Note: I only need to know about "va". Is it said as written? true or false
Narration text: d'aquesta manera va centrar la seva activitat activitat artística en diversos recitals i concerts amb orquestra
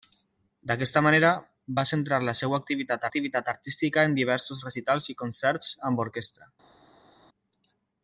true